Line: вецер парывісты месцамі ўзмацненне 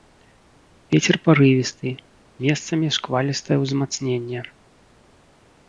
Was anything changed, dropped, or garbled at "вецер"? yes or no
no